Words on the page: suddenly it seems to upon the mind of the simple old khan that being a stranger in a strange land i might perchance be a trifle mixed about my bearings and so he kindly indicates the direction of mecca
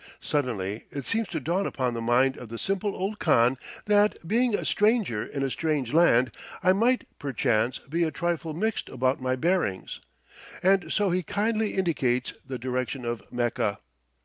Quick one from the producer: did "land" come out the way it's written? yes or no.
yes